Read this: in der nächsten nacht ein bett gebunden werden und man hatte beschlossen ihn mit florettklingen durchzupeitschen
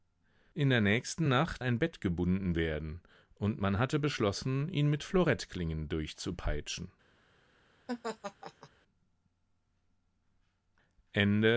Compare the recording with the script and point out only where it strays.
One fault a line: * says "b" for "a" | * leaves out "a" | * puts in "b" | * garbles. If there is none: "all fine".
all fine